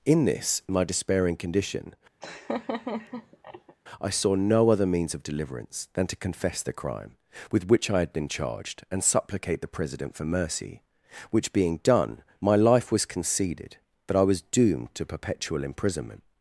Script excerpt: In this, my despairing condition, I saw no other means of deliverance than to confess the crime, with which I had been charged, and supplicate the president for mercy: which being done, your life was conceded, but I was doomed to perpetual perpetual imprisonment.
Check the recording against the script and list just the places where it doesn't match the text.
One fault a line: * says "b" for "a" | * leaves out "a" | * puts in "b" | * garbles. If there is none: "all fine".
* says "my" for "your"
* leaves out "perpetual"